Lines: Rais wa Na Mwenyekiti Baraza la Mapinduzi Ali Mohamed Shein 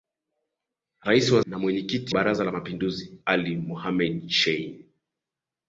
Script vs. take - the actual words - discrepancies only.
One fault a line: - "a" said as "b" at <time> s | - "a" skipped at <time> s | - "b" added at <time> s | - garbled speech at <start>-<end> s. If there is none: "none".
none